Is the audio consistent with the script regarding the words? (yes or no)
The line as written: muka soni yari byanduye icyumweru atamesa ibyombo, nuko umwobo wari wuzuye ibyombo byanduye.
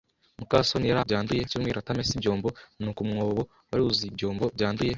yes